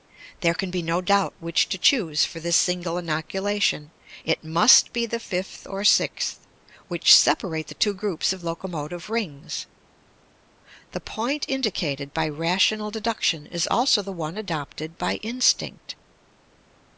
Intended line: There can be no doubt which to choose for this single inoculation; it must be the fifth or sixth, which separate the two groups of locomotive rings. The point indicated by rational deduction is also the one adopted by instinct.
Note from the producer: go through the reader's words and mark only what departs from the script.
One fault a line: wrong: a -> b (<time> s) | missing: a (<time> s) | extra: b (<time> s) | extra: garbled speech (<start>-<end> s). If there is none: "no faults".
no faults